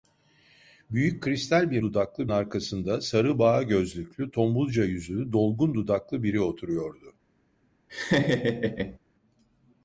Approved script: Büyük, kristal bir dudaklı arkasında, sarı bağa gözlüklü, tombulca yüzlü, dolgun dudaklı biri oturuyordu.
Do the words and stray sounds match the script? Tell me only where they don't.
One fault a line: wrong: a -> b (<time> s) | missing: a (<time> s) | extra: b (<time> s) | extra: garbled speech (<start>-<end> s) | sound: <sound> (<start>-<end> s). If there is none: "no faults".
sound: laugh (7.9-9.0 s)